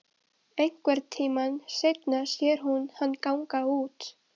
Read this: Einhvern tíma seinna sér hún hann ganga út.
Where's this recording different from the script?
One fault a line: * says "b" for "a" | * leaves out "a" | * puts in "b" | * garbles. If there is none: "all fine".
all fine